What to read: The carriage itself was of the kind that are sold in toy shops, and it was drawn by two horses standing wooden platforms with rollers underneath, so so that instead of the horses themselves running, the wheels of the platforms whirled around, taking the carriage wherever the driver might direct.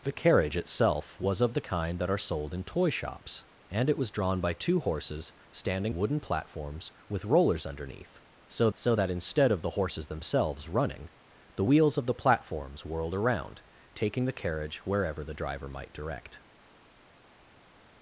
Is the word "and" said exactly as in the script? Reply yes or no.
yes